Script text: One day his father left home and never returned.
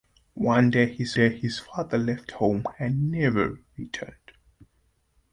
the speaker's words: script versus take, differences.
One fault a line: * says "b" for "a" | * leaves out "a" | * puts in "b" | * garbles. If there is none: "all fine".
* puts in "day his"